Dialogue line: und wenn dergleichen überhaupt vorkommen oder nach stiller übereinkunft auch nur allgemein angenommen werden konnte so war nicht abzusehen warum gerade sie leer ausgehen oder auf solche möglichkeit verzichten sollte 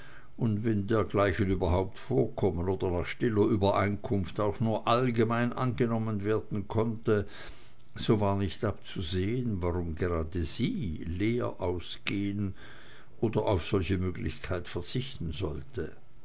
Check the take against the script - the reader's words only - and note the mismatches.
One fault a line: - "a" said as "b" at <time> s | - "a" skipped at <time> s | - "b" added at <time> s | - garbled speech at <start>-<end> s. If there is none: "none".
none